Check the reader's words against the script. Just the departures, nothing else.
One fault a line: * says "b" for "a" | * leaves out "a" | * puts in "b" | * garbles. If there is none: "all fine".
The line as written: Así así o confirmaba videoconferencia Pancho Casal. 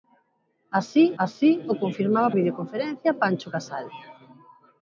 all fine